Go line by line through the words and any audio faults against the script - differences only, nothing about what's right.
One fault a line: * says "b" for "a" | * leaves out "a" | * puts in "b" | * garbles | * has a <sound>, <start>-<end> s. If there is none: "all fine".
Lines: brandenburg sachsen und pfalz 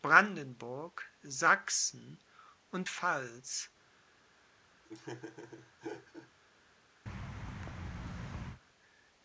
* has a laugh, 4.8-6.3 s
* has a thud, 7.1-8.6 s